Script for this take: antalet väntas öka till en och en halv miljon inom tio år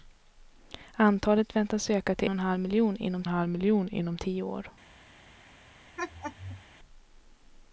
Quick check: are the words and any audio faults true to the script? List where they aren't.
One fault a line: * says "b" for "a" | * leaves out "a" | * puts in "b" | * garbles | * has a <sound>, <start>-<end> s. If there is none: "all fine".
* puts in "och"
* says "halv miljon inom" for "och en"
* has a laugh, 6.0-6.6 s